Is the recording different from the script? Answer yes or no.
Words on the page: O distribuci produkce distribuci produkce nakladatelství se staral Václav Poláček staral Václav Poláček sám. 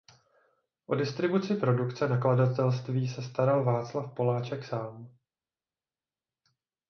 yes